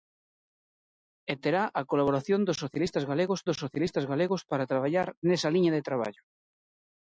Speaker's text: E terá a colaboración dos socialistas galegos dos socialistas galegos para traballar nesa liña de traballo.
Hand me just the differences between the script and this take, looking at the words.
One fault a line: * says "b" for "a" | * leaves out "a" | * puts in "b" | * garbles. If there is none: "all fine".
all fine